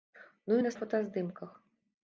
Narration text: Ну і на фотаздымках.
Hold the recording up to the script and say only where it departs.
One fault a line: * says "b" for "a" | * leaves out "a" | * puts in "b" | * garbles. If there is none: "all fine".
all fine